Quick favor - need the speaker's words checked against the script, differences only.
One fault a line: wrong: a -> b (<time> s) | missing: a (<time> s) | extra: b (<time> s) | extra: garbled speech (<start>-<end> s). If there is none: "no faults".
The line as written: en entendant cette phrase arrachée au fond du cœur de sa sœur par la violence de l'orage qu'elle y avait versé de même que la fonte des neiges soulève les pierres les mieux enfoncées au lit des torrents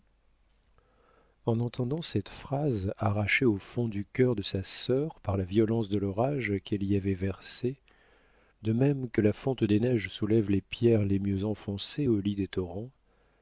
no faults